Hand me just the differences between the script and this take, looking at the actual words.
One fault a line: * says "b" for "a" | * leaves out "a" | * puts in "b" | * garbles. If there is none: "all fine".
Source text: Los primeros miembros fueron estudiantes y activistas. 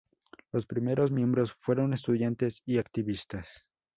all fine